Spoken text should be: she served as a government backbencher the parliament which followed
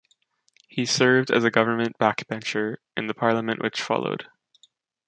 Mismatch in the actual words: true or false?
true